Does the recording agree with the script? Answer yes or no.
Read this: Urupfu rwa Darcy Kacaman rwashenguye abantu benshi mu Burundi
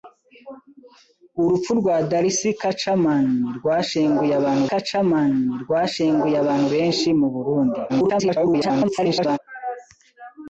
no